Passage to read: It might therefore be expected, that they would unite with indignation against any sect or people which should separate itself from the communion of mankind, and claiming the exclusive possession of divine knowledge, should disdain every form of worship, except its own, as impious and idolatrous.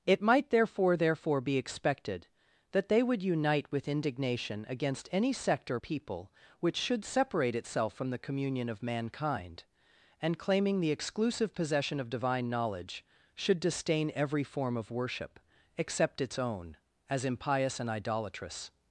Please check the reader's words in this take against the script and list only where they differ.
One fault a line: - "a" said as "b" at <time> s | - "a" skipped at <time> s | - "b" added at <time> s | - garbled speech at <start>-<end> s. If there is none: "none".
- "therefore" added at 1.0 s